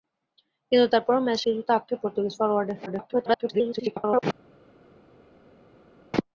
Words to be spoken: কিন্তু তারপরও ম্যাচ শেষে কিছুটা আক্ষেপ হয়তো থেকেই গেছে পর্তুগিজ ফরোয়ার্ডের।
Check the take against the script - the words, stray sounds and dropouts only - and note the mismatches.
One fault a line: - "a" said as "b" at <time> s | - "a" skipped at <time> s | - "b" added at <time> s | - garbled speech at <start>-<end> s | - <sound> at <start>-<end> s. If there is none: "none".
- "শেষে" skipped at 1.4 s
- "হয়তো থেকেই গেছে" skipped at 2.0 s
- garbled speech at 2.9-4.2 s